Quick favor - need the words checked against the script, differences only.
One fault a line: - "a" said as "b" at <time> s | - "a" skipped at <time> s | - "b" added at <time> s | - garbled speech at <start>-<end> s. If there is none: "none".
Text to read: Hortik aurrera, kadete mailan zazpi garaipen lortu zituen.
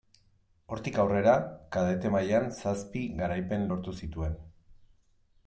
none